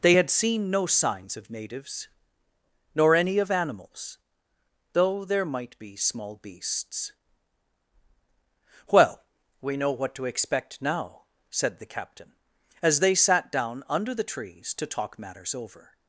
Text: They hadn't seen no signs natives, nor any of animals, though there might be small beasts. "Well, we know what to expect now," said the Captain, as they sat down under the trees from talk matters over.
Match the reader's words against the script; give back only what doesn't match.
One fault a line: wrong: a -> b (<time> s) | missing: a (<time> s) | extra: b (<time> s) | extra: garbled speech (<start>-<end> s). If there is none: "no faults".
wrong: hadn't -> had (0.1 s)
extra: of (1.4 s)
wrong: from -> to (14.7 s)